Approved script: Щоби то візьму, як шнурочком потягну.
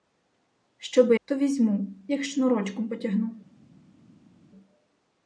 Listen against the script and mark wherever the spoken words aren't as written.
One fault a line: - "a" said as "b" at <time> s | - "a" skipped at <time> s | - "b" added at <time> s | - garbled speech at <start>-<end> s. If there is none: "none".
none